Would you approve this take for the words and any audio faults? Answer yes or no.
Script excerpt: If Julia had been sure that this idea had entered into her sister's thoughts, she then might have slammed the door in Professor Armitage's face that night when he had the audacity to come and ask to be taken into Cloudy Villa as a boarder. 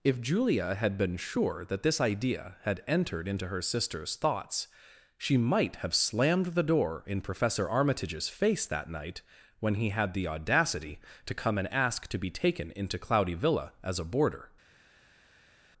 no